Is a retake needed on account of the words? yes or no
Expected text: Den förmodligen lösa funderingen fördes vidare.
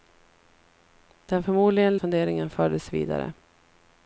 yes